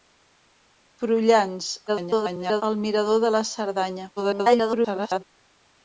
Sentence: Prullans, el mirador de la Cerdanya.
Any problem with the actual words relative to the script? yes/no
yes